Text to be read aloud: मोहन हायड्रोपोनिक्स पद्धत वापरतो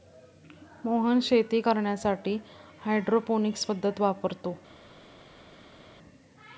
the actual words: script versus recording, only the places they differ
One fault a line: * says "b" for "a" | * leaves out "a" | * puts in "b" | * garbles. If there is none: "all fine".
* puts in "शेती करण्यासाठी"